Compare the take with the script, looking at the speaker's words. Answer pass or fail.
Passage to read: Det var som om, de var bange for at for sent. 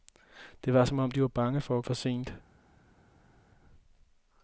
pass